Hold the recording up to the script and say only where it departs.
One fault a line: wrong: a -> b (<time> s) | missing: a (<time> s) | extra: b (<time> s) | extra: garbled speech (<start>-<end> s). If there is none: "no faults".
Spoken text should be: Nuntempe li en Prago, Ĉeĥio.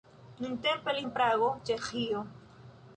no faults